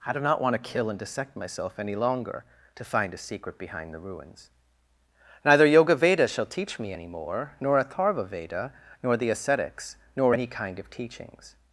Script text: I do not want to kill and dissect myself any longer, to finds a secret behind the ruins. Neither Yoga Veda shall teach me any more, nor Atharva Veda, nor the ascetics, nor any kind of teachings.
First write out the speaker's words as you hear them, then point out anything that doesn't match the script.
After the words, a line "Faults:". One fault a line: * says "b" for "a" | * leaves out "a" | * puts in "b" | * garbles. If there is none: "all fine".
I do not want to kill and dissect myself any longer, to find a secret behind the ruins. Neither Yoga Veda shall teach me any more, nor Atharva Veda, nor the ascetics, nor any kind of teachings.
Faults:
* says "find" for "finds"